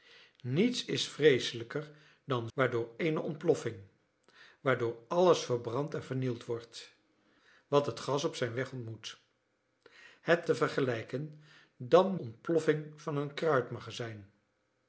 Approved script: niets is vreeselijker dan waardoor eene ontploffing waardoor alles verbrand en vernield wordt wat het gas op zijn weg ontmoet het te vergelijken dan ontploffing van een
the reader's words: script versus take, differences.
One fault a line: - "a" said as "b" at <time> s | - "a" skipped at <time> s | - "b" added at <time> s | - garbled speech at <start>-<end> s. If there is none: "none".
none